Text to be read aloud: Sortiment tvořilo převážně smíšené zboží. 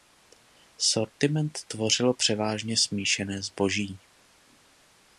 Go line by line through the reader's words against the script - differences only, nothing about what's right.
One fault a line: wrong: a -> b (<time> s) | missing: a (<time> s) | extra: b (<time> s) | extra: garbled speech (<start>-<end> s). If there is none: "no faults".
no faults